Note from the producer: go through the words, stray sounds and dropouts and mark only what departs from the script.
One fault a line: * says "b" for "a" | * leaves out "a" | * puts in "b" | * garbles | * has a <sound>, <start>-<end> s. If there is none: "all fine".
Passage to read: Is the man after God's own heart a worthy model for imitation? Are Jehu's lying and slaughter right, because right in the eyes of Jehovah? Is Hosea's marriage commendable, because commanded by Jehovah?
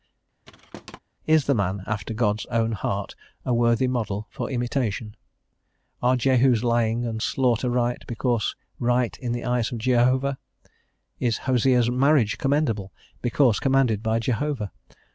* has a thud, 0.4-1.0 s